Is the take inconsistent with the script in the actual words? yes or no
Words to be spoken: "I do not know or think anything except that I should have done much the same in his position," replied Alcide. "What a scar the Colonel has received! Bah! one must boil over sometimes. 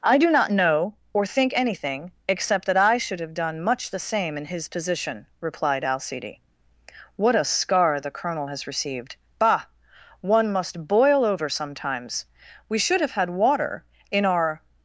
yes